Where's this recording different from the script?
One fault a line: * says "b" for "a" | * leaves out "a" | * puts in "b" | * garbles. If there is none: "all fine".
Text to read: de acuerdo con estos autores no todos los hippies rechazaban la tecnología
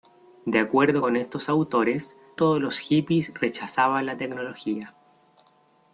* leaves out "no"